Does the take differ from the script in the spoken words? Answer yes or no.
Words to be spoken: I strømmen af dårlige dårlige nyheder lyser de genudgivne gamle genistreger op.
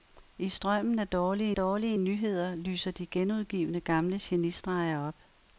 no